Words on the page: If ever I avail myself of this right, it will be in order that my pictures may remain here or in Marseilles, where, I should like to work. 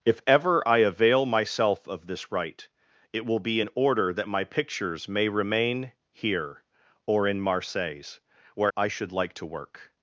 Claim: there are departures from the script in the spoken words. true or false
false